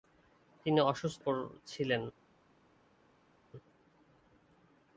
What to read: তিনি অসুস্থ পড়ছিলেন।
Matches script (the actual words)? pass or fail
pass